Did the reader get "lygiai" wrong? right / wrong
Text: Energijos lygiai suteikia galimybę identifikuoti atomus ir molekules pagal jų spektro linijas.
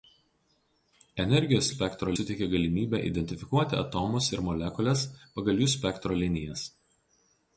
wrong